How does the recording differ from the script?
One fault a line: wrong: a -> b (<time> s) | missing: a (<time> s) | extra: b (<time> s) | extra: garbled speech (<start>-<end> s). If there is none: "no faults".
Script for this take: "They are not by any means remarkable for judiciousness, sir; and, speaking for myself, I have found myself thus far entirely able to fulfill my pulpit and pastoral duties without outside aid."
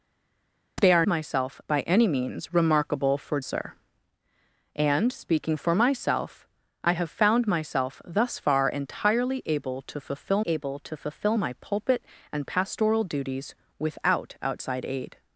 wrong: not -> myself (1.1 s)
missing: judiciousness (3.4 s)
extra: able to fulfill (10.5 s)